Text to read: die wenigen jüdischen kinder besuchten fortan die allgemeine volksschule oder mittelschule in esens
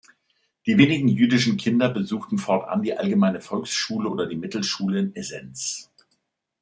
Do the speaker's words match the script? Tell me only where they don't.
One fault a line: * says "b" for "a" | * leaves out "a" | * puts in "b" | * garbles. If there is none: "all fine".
* puts in "die"